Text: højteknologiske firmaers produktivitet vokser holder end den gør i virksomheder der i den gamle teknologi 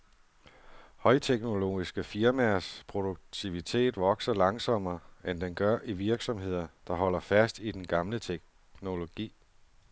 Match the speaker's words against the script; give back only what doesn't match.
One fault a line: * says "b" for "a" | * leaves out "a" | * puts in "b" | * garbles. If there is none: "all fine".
* says "langsommere" for "holder"
* puts in "holder fast"